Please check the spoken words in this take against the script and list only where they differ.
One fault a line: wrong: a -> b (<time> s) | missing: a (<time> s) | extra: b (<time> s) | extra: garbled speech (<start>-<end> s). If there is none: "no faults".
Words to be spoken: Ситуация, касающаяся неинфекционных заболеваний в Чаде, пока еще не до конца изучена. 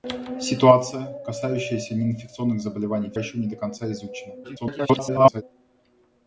missing: Чаде пока (3.2 s)
extra: garbled speech (4.4-5.4 s)